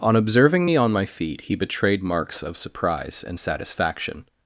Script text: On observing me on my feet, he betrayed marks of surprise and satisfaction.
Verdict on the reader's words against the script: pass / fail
pass